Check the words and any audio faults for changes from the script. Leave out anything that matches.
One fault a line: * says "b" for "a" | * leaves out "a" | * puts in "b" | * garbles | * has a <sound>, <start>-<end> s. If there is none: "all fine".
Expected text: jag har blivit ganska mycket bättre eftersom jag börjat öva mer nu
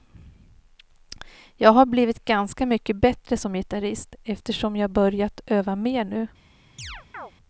* puts in "som gitarrist"
* has a chirp, 6.8-7.3 s